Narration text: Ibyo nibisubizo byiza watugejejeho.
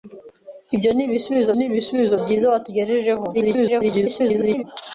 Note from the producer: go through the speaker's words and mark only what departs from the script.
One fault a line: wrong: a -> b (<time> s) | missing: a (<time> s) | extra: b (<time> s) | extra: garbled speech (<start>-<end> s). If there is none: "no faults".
extra: nibisubizo (1.5 s)
extra: garbled speech (3.3-4.6 s)